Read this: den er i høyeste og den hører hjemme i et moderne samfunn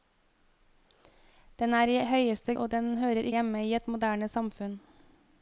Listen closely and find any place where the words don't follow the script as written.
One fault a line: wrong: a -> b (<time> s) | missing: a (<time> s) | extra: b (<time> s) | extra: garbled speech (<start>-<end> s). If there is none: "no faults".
no faults